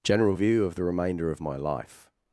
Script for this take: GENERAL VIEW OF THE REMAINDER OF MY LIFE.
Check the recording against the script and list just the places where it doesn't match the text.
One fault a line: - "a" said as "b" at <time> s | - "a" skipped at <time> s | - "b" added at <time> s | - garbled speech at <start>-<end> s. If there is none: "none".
none